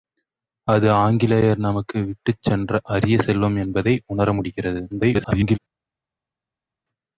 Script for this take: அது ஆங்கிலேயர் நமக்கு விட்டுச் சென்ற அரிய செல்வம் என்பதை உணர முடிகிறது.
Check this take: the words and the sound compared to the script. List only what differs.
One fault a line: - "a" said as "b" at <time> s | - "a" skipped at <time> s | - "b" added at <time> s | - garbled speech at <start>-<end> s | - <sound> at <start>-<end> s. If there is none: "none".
- garbled speech at 4.9-5.6 s